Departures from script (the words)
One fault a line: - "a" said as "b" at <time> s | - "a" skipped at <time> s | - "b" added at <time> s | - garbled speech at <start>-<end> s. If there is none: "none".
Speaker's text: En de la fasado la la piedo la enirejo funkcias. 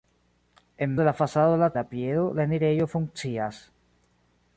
none